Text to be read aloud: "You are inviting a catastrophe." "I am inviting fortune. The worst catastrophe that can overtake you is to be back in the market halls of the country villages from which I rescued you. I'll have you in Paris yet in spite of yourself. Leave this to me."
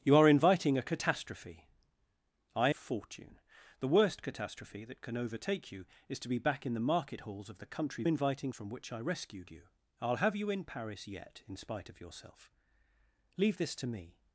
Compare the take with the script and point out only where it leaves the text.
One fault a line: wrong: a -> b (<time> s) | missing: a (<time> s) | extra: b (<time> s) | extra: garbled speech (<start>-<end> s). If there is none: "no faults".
missing: am inviting (2.7 s)
wrong: villages -> inviting (8.0 s)